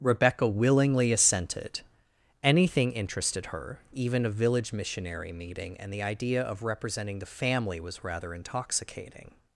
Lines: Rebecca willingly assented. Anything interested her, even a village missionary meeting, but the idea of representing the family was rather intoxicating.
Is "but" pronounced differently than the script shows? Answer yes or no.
yes